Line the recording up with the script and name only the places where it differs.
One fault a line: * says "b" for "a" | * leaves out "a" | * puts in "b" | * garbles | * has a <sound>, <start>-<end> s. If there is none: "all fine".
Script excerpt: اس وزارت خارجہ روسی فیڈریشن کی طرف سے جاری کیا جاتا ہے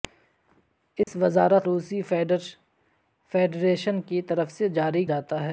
* has a dropout, 1.0-1.1 s
* leaves out "خارجہ"
* leaves out "کیا"